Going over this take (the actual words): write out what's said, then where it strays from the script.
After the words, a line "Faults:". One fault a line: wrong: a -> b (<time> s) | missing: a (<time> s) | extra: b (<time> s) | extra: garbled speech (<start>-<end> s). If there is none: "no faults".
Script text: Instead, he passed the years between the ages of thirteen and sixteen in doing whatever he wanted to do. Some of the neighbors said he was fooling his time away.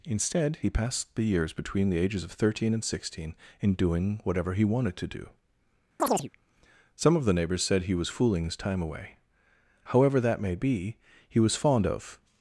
Instead, he passed the years between the ages of thirteen and sixteen in doing whatever he wanted to do. Some of the neighbors said he was fooling his time away. However that may be, he was fond of
Faults:
extra: However that may be he was fond of (9.8 s)